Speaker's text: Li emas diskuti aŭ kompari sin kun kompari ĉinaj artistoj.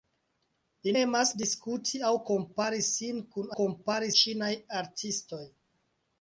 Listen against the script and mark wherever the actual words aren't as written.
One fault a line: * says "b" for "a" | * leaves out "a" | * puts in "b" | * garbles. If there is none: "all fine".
all fine